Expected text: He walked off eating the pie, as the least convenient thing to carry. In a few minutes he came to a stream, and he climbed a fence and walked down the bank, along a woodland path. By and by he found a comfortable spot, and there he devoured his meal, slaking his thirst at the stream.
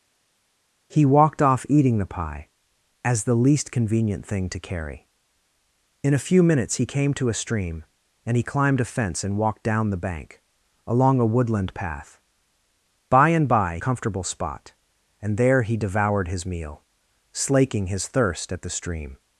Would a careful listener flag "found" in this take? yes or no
yes